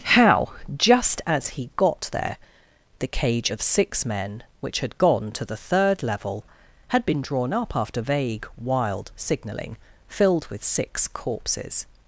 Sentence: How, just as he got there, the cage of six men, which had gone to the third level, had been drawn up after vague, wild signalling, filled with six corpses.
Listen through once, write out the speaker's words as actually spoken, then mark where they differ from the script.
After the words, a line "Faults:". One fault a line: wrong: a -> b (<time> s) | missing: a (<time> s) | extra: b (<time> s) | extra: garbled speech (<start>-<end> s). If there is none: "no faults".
How, just as he got there, the cage of six men, which had gone to the third level, had been drawn up after vague, wild signalling, filled with six corpses.
Faults:
no faults